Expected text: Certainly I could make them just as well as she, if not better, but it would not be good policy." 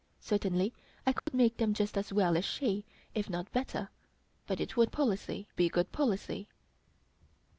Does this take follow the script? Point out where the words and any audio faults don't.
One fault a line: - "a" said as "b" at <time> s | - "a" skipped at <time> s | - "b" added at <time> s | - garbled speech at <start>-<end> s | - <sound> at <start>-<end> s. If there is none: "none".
- dropout at 1.2-1.3 s
- "not" said as "policy" at 4.9 s